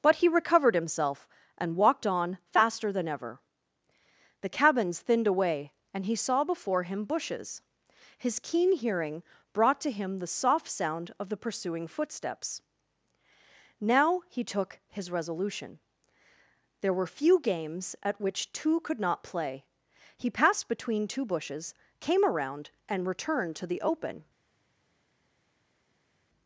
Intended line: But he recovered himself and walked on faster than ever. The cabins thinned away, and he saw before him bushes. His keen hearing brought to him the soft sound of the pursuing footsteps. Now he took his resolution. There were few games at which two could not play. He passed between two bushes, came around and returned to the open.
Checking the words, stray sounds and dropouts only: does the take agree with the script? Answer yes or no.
yes